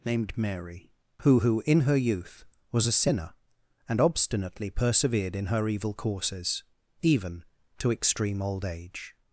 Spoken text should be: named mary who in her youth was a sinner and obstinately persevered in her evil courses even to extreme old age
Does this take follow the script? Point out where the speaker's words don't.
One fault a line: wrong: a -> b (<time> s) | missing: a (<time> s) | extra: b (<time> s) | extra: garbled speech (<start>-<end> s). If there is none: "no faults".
extra: who (1.4 s)